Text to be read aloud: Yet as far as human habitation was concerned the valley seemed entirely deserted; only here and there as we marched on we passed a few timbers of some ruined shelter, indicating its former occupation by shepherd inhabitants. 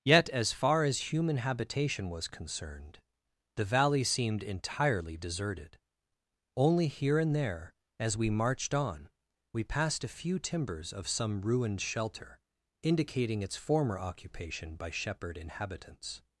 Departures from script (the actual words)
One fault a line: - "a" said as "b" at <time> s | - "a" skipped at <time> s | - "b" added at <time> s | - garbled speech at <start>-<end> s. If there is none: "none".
none